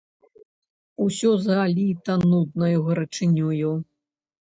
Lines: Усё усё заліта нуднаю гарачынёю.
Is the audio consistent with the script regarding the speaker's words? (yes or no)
no